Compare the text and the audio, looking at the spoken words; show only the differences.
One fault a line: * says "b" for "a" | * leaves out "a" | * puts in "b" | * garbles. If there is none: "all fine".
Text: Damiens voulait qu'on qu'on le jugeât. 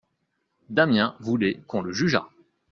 * leaves out "qu'on"